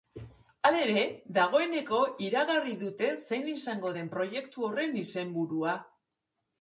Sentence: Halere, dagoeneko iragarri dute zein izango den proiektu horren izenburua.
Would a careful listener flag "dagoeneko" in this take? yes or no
no